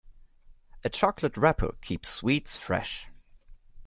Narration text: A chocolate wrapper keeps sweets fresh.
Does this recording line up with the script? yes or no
yes